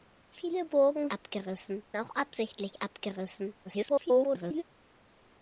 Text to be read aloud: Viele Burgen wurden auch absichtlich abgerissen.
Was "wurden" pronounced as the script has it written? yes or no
no